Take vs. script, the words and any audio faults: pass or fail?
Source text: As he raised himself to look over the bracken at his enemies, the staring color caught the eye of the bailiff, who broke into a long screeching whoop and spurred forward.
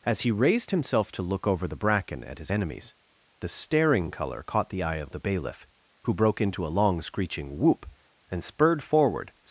pass